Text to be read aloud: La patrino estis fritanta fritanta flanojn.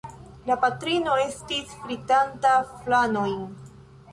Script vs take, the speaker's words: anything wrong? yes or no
yes